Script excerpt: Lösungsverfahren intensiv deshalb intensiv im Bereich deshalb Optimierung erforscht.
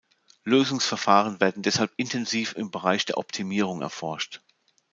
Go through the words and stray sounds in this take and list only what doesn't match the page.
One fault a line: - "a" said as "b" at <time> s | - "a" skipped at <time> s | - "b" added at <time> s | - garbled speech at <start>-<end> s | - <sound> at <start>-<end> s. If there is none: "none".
- "intensiv" said as "werden" at 1.4 s
- "deshalb" said as "der" at 3.0 s